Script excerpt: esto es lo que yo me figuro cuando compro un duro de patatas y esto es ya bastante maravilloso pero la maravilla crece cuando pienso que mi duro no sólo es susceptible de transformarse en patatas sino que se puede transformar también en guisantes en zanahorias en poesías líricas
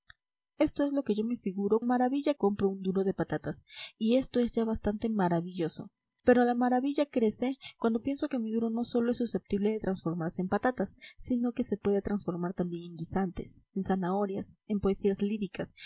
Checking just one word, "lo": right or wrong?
right